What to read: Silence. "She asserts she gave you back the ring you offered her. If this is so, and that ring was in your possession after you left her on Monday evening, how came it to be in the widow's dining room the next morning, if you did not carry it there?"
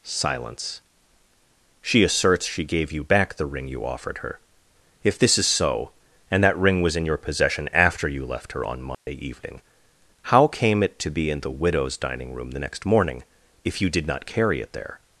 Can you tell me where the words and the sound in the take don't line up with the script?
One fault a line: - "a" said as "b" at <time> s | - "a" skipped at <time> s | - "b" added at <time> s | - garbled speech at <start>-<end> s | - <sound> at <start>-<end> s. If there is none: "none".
- dropout at 8.9-9.1 s